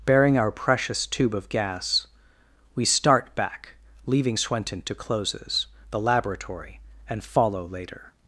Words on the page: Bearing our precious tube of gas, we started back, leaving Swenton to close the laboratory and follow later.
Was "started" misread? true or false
true